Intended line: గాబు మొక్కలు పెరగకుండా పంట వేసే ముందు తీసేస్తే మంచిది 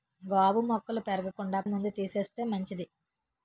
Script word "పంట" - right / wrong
wrong